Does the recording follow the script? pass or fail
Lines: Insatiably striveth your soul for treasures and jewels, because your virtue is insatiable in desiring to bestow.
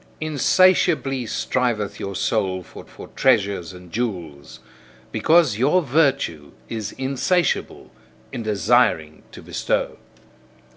fail